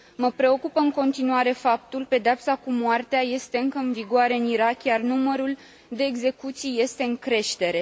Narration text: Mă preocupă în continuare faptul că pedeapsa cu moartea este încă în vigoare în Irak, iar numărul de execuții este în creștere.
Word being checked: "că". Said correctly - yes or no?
no